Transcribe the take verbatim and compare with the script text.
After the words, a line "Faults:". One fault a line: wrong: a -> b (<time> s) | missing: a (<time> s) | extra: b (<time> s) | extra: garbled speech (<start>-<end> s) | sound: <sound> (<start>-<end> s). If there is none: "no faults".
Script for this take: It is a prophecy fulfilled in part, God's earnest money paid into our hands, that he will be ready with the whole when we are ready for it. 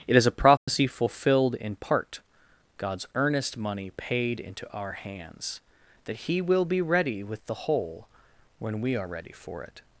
It is a prophecy fulfilled in part, God's earnest money paid into our hands, that he will be ready with the whole when we are ready for it.
Faults:
sound: dropout (0.6-0.7 s)